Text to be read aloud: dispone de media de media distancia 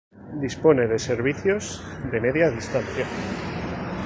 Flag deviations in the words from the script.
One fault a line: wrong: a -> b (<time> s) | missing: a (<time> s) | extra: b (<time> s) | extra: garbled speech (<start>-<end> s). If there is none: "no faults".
wrong: media -> servicios (1.0 s)